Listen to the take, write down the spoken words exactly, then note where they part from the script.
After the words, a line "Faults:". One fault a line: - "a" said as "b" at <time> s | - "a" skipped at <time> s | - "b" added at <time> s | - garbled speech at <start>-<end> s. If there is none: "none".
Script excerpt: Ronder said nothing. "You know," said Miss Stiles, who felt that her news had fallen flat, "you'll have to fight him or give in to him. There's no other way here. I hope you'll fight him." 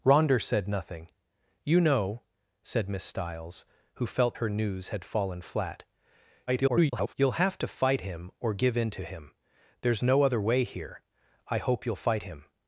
Ronder said nothing. "You know," said Miss Stiles, who felt her news had fallen flat, [garbled] "you'll have to fight him or give in to him. There's no other way here. I hope you'll fight him."
Faults:
- "that" skipped at 4.3 s
- garbled speech at 6.5-7.1 s